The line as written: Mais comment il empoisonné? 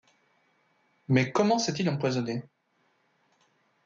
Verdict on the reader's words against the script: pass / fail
fail